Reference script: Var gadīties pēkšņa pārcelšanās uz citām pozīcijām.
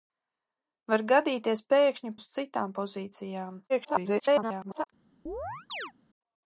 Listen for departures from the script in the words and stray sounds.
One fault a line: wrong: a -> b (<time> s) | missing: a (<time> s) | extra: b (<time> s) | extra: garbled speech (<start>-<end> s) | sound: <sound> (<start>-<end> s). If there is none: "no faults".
missing: pārcelšanās (2.1 s)
extra: garbled speech (3.7-4.8 s)
sound: chirp (5.3-5.9 s)